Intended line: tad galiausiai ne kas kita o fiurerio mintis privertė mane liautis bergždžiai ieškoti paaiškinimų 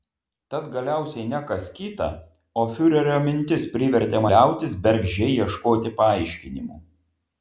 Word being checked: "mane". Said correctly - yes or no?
no